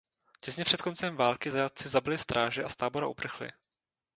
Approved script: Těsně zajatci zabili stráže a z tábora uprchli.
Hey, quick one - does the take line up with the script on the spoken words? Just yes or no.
no